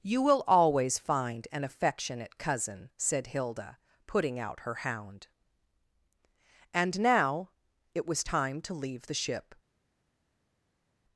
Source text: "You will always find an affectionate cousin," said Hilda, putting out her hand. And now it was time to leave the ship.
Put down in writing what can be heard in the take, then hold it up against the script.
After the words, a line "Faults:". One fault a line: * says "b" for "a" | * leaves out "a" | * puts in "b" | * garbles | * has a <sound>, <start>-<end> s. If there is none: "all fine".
"You will always find an affectionate cousin," said Hilda, putting out her hound. And now it was time to leave the ship.
Faults:
* says "hound" for "hand"